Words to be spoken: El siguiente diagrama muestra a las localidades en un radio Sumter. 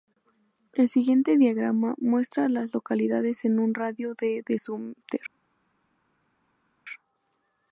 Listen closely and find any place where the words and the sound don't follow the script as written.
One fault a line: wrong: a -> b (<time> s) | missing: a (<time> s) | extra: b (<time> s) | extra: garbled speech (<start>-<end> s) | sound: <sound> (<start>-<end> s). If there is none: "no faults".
extra: de de (4.2 s)